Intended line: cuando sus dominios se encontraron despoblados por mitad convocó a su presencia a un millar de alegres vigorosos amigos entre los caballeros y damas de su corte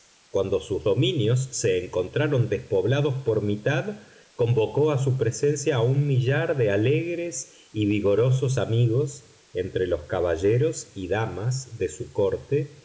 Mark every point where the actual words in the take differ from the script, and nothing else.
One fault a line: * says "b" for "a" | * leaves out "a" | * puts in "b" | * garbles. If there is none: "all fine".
* puts in "y"